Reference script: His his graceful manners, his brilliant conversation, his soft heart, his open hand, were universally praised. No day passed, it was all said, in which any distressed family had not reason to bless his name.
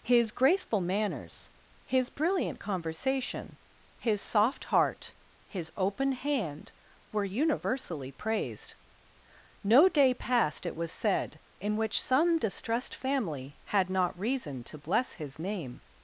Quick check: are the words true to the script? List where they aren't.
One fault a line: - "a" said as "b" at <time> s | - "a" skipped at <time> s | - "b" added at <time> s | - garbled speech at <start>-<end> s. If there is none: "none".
- "his" skipped at 0.3 s
- "all" skipped at 10.9 s
- "any" said as "some" at 12.0 s